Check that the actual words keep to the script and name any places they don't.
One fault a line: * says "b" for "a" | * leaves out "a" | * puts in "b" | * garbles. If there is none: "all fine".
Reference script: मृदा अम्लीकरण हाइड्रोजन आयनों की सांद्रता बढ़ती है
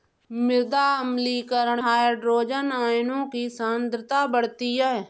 all fine